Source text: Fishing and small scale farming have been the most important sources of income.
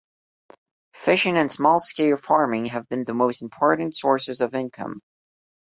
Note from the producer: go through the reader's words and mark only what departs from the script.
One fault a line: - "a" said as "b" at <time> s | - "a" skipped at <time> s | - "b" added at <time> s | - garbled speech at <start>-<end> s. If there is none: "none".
none